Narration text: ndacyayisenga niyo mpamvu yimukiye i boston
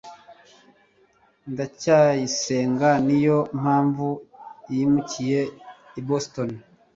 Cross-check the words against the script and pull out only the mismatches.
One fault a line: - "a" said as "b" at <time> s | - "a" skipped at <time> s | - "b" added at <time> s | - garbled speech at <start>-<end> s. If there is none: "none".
none